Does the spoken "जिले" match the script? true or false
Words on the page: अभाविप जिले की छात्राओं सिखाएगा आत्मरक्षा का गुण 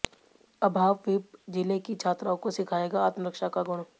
true